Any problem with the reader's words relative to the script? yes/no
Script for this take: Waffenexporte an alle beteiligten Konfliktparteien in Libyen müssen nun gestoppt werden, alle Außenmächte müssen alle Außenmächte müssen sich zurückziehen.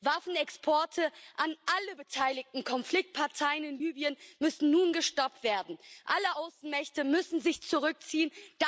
yes